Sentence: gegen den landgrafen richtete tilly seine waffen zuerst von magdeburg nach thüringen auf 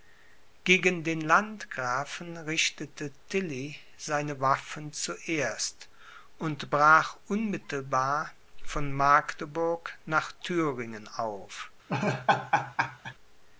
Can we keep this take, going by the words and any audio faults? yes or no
no